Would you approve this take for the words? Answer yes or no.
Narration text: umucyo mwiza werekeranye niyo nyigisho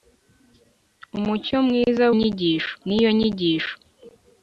no